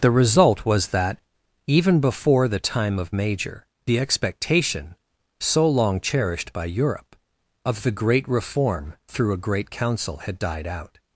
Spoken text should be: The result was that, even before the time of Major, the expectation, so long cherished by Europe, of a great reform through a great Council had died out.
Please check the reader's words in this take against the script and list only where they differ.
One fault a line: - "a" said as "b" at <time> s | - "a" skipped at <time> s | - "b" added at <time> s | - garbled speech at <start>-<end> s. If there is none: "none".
- "a" said as "the" at 7.8 s